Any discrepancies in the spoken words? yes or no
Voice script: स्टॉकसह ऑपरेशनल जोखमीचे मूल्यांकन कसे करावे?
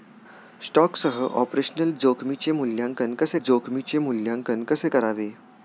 yes